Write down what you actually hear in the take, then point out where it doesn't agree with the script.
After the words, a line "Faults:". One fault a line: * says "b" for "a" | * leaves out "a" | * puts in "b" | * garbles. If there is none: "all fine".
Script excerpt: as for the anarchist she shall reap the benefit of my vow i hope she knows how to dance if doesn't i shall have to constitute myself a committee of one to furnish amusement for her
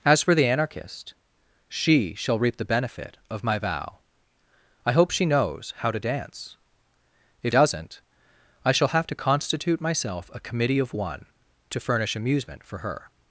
as for the anarchist she shall reap the benefit of my vow i hope she knows how to dance if doesn't i shall have to constitute myself a committee of one to furnish amusement for her
Faults:
all fine